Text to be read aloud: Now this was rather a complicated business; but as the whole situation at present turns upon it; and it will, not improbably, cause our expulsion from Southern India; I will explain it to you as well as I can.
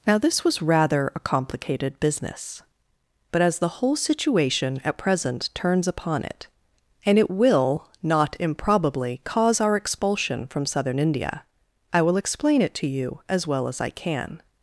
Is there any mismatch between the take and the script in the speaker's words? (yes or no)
no